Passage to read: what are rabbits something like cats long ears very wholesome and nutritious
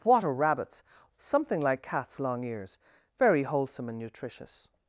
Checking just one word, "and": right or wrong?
right